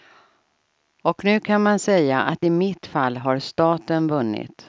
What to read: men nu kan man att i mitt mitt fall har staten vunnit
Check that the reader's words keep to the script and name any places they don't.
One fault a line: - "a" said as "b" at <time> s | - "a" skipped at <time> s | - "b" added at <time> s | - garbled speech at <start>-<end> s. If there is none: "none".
- "men" said as "och" at 1.0 s
- "säga" added at 1.8 s
- "mitt" skipped at 2.9 s